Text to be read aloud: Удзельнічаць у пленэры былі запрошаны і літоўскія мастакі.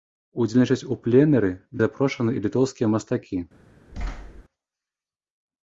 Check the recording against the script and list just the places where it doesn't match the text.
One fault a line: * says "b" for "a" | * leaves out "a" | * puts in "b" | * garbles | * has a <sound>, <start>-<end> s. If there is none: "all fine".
* leaves out "былі"
* has a thud, 3.9-4.4 s